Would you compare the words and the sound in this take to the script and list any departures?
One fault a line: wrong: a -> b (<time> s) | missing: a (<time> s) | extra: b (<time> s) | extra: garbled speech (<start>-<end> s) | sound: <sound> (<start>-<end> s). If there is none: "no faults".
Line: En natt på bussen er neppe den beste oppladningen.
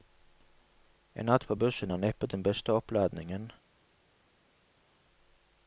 no faults